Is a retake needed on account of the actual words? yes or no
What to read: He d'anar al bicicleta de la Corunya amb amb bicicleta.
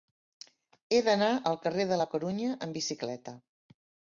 yes